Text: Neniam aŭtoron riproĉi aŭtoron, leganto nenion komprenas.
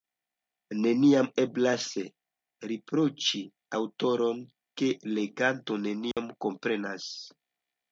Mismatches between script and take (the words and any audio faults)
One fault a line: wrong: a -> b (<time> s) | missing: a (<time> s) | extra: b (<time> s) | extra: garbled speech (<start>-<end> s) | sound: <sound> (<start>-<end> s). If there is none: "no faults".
wrong: aŭtoron -> eblas (1.4 s)
extra: ke (4.8 s)
sound: dropout (6.1-6.2 s)